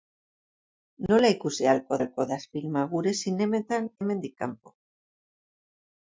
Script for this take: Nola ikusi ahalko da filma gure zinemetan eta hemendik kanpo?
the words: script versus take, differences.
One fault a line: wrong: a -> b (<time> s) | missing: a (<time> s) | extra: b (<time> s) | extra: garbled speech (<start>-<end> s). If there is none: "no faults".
extra: ahalko (2.0 s)
missing: eta (3.9 s)